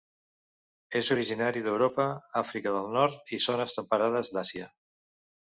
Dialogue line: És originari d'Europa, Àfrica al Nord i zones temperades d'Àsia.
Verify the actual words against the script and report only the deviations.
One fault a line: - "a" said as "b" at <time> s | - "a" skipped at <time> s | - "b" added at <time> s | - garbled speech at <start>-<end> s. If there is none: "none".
- "al" said as "del" at 2.8 s